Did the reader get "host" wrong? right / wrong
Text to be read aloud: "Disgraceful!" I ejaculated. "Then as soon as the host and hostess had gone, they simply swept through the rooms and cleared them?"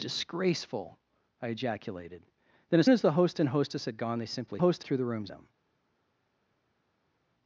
right